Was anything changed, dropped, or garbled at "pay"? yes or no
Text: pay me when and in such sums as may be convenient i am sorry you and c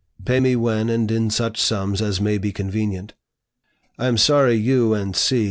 no